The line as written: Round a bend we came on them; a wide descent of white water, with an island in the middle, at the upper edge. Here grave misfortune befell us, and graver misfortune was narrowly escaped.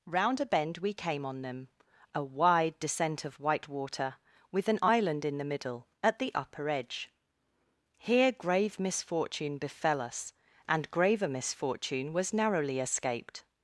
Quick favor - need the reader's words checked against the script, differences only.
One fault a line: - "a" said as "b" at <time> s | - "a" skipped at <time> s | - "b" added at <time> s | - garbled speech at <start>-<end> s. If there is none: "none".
none